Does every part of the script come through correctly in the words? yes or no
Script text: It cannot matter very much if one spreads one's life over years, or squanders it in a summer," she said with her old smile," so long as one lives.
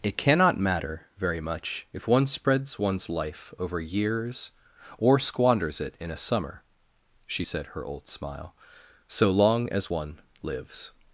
no